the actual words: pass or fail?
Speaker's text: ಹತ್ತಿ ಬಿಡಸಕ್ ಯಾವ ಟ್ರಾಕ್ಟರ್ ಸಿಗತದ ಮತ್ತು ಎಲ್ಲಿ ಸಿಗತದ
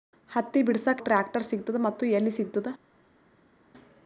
fail